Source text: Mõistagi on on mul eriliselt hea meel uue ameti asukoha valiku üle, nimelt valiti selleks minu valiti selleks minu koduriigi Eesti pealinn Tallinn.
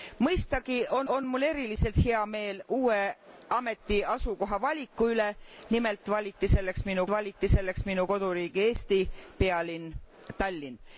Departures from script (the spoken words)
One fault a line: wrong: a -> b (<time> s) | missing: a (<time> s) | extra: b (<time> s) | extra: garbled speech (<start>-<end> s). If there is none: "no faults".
no faults